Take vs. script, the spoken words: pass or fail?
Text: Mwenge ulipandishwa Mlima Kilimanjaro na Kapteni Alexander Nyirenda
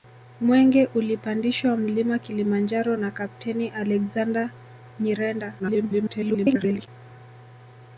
fail